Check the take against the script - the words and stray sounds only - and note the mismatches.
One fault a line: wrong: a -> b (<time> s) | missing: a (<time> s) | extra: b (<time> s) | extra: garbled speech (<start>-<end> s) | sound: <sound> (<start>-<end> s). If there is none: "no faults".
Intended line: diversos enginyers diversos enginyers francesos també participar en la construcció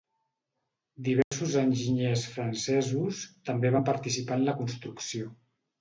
sound: dropout (1.2-1.3 s)
missing: diversos enginyers (2.2 s)
extra: van (3.8 s)